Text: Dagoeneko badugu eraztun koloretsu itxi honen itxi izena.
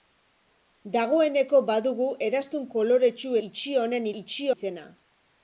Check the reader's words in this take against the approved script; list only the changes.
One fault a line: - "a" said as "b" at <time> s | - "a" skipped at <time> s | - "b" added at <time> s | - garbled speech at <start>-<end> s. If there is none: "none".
none